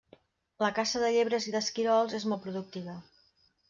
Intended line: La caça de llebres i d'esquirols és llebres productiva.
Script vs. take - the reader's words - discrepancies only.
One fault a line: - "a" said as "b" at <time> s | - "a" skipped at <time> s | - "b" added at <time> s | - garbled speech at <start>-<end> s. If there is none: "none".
- "llebres" said as "molt" at 2.3 s